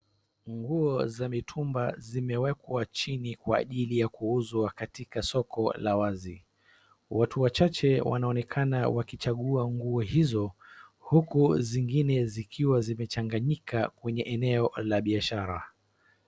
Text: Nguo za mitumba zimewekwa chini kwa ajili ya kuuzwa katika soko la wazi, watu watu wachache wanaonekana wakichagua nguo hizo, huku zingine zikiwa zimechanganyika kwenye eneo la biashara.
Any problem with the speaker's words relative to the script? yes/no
yes